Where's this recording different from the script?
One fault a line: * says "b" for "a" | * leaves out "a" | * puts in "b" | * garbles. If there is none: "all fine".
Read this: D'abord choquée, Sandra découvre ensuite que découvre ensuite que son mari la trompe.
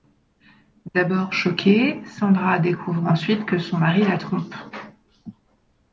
* leaves out "découvre ensuite que"